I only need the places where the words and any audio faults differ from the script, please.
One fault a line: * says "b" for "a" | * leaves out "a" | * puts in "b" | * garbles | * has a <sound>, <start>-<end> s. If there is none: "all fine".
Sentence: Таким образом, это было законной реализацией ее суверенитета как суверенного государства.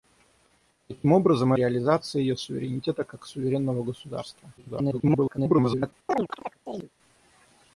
* leaves out "это было законной"
* garbles
* has a chirp, 6.1-6.9 s